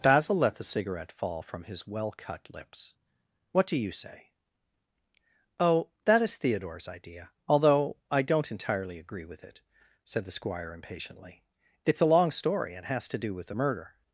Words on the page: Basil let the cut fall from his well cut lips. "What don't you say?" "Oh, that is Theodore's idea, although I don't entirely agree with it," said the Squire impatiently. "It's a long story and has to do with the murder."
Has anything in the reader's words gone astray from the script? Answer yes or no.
yes